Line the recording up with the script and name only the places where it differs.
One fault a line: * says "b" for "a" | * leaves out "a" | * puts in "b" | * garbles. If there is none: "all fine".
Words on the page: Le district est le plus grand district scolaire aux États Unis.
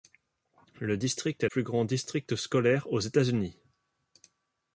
* leaves out "le"